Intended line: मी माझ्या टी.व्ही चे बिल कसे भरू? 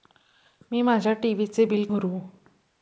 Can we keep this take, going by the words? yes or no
no